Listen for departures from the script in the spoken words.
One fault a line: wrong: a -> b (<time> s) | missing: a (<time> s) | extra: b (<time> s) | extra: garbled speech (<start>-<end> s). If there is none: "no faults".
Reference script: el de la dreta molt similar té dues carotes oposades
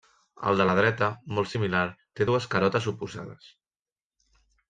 no faults